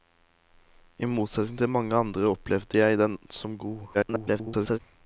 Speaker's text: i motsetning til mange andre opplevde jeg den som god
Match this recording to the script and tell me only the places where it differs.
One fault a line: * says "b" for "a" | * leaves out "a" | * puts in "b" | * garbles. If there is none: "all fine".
* garbles